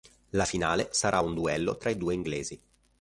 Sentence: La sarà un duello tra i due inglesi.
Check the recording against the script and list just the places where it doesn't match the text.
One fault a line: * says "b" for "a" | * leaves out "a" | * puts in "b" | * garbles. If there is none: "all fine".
* puts in "finale"